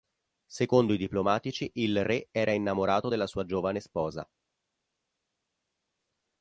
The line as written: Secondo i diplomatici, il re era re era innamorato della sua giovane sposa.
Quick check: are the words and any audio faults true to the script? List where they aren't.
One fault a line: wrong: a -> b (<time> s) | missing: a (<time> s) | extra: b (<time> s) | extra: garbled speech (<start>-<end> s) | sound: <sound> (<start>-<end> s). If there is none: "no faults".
missing: re era (2.5 s)